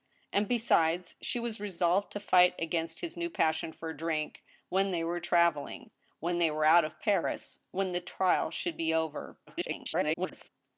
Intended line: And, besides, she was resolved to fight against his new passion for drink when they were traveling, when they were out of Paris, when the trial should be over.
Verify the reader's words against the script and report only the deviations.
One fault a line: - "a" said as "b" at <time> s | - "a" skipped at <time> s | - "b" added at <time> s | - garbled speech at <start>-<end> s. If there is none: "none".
- garbled speech at 9.5-10.5 s